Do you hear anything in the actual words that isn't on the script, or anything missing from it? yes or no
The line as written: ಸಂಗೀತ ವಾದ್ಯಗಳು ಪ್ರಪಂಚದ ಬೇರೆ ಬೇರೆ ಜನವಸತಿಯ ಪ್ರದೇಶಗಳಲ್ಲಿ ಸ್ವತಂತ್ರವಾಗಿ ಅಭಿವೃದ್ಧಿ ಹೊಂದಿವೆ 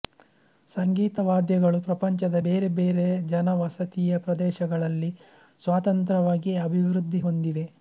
no